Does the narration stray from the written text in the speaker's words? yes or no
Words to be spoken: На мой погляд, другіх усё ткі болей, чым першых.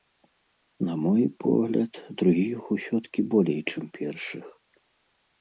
no